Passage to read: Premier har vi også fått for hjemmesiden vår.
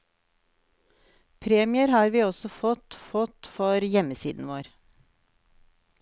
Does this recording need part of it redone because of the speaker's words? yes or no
yes